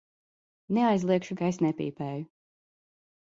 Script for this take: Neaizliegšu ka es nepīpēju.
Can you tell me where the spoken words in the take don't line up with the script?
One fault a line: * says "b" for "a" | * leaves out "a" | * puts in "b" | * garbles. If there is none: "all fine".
all fine